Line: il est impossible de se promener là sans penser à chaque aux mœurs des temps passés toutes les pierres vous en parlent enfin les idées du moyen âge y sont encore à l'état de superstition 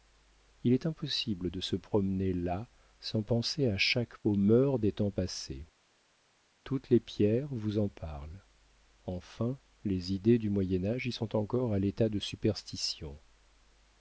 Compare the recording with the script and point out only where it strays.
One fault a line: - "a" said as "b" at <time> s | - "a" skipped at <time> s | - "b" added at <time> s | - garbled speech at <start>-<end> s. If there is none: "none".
none